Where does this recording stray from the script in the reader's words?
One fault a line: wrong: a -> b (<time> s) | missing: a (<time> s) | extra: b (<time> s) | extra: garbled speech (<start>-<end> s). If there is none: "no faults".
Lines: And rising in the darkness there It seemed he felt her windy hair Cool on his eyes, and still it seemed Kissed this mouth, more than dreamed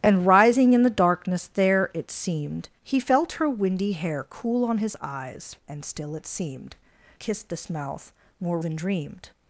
no faults